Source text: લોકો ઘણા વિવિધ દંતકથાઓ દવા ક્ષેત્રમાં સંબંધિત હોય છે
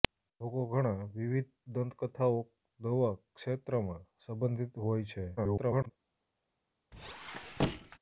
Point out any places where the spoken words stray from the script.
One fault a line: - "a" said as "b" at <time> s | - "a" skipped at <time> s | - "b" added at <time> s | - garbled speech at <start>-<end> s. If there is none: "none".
- garbled speech at 5.4-5.9 s